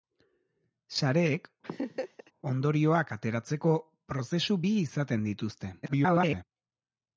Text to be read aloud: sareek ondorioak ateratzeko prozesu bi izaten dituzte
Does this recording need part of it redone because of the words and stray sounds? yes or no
yes